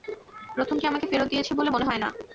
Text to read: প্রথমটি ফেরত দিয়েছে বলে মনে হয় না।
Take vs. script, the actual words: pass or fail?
fail